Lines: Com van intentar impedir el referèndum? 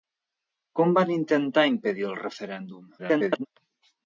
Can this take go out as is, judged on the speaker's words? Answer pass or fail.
fail